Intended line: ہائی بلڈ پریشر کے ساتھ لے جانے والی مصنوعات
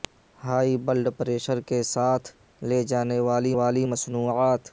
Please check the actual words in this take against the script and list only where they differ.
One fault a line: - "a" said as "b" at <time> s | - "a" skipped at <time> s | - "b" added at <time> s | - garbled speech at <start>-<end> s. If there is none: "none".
- "والی" added at 3.6 s